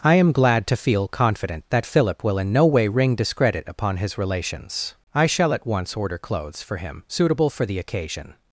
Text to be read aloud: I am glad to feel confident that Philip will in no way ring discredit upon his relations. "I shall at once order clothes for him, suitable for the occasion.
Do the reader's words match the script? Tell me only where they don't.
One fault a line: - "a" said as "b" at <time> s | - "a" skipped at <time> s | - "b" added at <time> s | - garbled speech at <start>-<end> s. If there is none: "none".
none